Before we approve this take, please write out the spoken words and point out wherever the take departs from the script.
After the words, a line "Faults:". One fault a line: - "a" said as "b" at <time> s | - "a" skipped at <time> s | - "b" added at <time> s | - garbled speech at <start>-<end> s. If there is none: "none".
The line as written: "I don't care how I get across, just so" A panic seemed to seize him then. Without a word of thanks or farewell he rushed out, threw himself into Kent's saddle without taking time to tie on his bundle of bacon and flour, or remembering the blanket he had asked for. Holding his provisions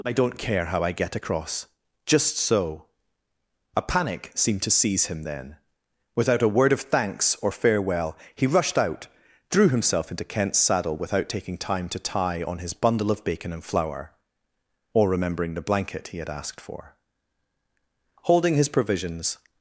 "I don't care how I get across, just so" A panic seemed to seize him then. Without a word of thanks or farewell he rushed out, threw himself into Kent's saddle without taking time to tie on his bundle of bacon and flour, or remembering the blanket he had asked for. Holding his provisions
Faults:
none